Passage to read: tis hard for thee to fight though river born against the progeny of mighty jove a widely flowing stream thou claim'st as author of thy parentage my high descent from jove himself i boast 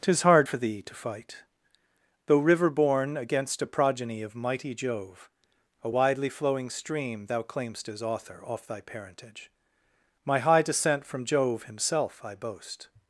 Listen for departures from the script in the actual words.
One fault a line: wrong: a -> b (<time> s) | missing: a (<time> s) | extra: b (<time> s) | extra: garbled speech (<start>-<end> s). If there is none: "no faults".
wrong: the -> a (3.6 s)
wrong: of -> off (8.4 s)